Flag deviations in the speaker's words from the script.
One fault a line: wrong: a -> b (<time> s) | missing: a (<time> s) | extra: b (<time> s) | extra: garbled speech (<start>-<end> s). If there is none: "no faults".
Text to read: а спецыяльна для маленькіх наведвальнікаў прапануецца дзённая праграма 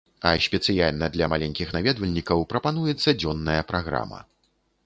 no faults